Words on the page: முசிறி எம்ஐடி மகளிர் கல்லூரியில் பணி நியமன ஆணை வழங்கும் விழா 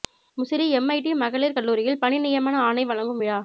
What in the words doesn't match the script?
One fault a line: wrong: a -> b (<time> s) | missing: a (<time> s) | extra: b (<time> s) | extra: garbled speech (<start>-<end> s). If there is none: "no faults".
no faults